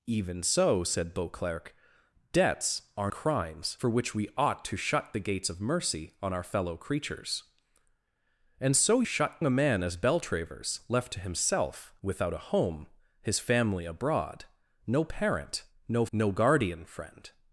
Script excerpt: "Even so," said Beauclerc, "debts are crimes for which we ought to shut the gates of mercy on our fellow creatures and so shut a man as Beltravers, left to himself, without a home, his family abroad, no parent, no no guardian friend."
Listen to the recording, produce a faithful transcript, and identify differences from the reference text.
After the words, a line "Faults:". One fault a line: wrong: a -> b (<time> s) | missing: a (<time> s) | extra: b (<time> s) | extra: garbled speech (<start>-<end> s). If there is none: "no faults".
"Even so," said Beauclerc, "debts are crimes for which we ought to shut the gates of mercy on our fellow creatures and so shut a man as Beltravers, left to himself, without a home, his family abroad, no parent, no no guardian friend."
Faults:
no faults